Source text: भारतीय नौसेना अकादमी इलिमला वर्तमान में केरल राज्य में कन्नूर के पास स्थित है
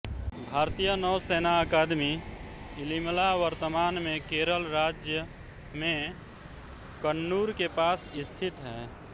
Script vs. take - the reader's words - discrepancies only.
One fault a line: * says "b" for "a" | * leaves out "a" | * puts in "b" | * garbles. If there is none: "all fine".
all fine